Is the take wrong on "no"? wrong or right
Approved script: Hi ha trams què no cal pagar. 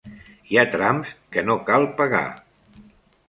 right